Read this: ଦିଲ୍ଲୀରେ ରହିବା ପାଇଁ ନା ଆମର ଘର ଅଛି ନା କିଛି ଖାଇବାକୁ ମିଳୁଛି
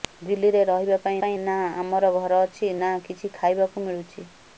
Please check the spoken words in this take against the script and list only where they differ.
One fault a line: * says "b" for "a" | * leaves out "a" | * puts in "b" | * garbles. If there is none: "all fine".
* puts in "ପାଇଁ"